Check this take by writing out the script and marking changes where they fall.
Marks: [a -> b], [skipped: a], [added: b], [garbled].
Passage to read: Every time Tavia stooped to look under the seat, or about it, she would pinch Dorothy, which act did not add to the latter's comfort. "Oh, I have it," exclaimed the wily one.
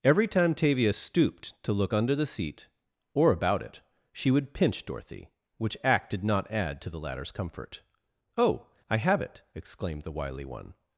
Every time Tavia stooped to look under the seat, or about it, she would pinch Dorothy, which act did not add to the latter's comfort. "Oh, I have it," exclaimed the wily one.